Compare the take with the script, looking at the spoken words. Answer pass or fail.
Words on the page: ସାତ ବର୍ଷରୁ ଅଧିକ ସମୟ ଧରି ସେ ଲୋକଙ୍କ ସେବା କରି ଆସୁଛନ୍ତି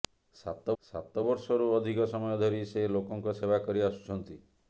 fail